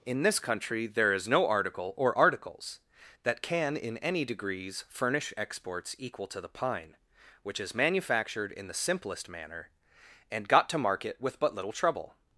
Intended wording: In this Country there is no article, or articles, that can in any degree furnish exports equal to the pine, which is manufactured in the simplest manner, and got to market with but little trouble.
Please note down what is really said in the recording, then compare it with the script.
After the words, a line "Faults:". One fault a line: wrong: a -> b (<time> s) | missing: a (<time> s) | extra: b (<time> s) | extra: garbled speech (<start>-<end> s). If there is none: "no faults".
In this Country there is no article, or articles, that can in any degrees furnish exports equal to the pine, which is manufactured in the simplest manner, and got to market with but little trouble.
Faults:
wrong: degree -> degrees (4.2 s)